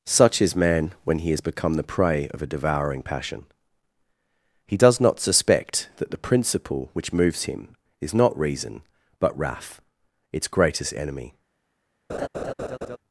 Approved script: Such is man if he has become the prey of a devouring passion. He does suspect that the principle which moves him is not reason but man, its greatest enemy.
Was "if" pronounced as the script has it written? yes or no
no